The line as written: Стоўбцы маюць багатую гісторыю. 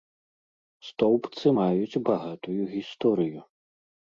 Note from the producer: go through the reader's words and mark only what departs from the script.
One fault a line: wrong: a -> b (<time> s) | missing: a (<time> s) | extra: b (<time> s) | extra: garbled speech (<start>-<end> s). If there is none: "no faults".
no faults